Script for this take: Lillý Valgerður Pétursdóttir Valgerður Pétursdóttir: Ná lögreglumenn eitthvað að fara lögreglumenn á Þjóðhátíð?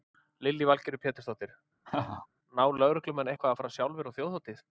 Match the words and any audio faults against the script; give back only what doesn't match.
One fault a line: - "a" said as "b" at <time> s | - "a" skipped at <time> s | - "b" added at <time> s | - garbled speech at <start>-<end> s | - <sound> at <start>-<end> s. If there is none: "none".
- "Valgerður Pétursdóttir" skipped at 1.5 s
- laugh at 1.8-2.3 s
- "lögreglumenn" said as "sjálfir" at 3.8 s